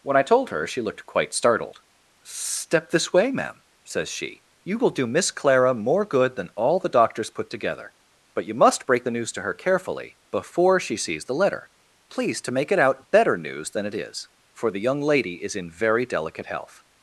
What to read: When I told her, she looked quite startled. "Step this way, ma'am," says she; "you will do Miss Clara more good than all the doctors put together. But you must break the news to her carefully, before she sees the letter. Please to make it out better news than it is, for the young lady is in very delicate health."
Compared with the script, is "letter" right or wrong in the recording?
right